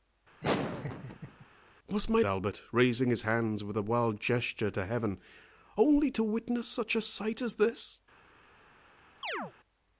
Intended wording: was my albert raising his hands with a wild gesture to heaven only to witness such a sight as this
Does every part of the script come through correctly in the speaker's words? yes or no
yes